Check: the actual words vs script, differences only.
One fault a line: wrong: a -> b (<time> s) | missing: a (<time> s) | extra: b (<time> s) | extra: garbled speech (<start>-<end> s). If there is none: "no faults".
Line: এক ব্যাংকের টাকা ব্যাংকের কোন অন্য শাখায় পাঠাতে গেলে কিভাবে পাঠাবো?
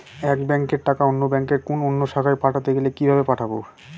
extra: অন্য (1.1 s)